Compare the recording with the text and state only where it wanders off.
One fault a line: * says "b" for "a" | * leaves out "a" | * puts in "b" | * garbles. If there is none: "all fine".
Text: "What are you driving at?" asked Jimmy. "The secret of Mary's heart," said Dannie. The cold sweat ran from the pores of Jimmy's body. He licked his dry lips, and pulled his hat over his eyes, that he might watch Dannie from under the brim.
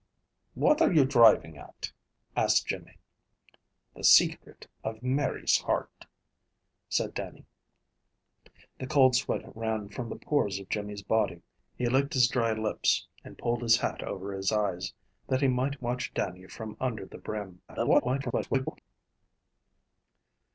* garbles